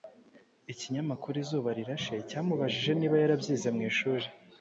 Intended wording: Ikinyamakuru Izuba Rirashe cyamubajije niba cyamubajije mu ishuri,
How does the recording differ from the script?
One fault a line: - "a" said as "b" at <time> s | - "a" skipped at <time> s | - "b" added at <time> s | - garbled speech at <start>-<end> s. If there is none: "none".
- "cyamubajije" said as "yarabyize" at 3.2 s